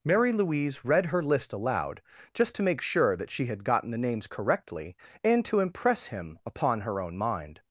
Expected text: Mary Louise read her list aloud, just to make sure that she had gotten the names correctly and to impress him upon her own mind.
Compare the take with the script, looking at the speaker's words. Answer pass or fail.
pass